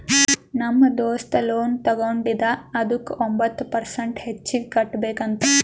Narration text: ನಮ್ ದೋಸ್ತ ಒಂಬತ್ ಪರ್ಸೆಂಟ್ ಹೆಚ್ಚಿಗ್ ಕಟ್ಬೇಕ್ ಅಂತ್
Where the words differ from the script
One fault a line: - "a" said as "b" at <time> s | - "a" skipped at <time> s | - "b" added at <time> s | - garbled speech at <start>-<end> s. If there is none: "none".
- "ಲೋನ್ ತಗೊಂಡಿದ ಅದುಕ್ಕ" added at 1.4 s